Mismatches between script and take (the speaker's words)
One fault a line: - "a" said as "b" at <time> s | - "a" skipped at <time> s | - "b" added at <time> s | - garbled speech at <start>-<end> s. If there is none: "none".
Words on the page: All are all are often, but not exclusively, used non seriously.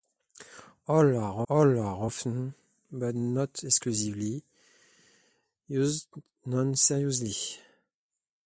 none